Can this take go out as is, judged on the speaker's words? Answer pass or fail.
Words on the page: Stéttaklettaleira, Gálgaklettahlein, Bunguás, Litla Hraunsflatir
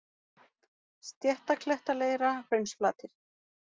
fail